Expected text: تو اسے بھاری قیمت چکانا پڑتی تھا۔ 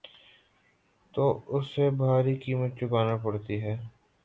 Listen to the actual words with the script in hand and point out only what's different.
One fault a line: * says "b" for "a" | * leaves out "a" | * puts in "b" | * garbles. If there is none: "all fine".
* says "ہے" for "تھا"